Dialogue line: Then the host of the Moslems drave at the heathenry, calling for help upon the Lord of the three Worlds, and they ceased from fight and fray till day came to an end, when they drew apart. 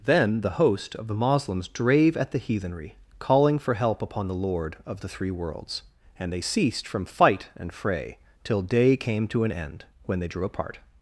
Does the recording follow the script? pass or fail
pass